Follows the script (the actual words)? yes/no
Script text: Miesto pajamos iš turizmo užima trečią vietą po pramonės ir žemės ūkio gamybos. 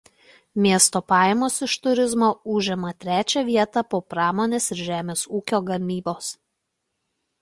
yes